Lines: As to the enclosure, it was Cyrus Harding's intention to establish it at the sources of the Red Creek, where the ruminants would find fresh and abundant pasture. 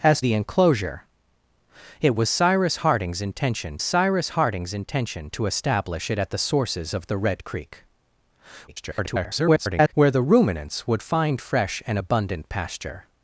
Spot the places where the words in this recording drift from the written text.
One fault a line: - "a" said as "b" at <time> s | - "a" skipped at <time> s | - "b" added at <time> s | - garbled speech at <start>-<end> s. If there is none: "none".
- "to" skipped at 0.2 s
- "Cyrus Harding's intention" added at 3.8 s
- garbled speech at 8.7-9.9 s